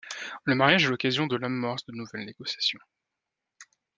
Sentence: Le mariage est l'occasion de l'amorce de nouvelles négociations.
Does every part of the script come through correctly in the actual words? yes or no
yes